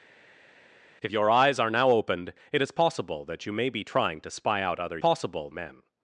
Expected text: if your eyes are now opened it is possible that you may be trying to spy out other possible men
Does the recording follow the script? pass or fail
pass